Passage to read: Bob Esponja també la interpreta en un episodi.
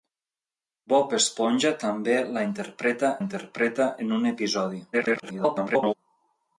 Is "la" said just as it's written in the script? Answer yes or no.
yes